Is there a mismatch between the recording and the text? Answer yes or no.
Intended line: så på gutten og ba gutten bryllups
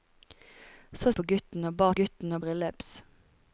no